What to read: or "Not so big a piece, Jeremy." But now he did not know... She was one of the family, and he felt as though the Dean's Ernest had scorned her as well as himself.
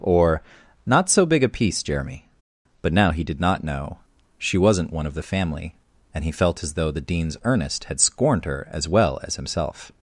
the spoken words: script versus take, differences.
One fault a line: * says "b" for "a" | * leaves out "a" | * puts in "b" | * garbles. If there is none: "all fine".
* says "wasn't" for "was"